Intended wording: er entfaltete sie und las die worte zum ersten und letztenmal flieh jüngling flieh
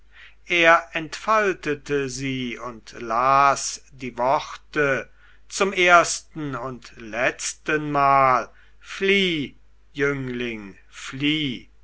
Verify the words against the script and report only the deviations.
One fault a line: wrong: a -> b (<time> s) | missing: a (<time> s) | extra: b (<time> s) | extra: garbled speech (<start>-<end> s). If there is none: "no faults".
no faults